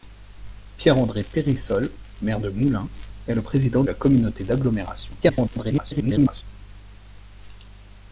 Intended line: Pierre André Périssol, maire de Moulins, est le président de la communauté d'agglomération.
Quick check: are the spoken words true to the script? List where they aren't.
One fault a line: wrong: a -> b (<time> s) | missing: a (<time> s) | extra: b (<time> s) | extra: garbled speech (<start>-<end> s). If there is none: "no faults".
missing: de (3.8 s)
extra: garbled speech (5.2-6.4 s)